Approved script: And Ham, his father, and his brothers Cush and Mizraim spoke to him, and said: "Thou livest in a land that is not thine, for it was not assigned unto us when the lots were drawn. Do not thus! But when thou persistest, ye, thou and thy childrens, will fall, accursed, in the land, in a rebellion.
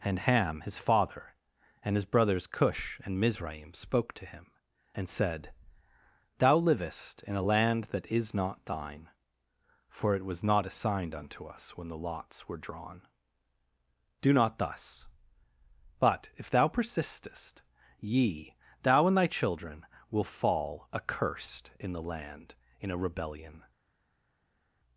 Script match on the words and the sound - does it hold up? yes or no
no